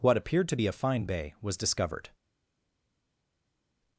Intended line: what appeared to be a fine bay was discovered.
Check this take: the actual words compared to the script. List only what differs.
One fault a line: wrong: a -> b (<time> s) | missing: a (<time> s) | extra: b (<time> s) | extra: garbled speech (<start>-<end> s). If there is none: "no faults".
no faults